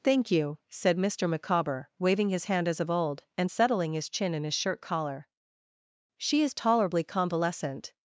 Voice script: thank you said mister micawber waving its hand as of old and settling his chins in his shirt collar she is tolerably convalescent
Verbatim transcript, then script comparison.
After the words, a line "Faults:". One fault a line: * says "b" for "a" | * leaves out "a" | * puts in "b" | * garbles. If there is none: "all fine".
thank you said mister micawber waving his hand as of old and settling his chin in his shirt collar she is tolerably convalescent
Faults:
* says "his" for "its"
* says "chin" for "chins"